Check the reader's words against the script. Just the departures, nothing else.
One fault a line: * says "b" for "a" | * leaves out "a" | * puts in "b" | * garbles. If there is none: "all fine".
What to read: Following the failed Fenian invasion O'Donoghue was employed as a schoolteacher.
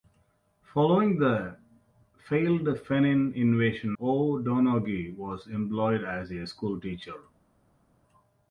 all fine